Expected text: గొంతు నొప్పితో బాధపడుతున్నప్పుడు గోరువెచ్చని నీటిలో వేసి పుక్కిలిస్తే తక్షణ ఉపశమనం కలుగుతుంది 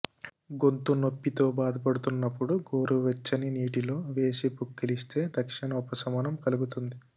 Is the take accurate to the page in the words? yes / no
yes